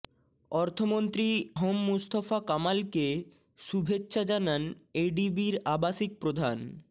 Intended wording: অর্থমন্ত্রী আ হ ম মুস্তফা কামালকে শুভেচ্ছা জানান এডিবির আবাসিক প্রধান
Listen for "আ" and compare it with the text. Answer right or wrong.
wrong